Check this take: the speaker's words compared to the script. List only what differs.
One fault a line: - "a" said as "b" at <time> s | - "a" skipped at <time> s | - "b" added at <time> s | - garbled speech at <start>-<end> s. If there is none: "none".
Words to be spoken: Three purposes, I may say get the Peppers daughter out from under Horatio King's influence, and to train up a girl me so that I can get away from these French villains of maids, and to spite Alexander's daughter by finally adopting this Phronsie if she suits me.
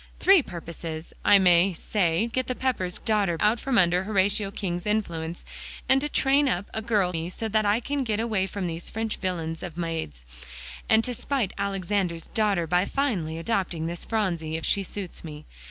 none